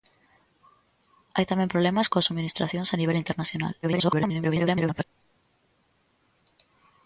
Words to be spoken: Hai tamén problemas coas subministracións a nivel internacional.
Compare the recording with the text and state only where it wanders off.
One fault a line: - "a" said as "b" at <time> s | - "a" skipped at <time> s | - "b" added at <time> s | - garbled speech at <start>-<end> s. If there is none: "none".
- garbled speech at 3.8-5.0 s